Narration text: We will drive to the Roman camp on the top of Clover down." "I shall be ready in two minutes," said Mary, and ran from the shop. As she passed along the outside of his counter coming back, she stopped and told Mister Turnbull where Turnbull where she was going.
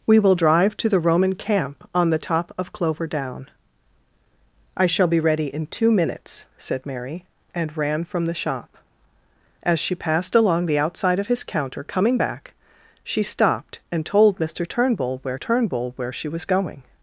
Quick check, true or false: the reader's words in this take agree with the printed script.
true